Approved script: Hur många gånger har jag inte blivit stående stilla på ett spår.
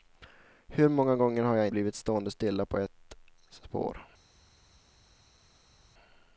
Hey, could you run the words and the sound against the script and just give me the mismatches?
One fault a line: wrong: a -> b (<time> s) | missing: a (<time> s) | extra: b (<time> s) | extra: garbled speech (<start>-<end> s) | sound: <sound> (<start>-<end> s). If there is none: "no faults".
missing: inte (1.7 s)